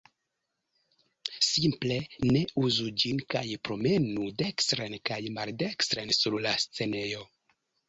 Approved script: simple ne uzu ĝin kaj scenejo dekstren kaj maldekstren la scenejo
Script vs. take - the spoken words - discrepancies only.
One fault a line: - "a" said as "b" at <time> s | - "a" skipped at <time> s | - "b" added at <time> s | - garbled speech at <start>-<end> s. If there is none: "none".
- "scenejo" said as "promenu" at 3.7 s
- "sur" added at 6.2 s